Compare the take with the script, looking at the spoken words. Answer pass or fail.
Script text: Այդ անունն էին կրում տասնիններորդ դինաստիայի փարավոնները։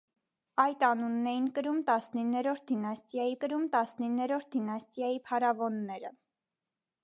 fail